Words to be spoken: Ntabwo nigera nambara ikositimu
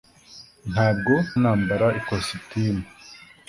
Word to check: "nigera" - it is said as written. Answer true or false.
false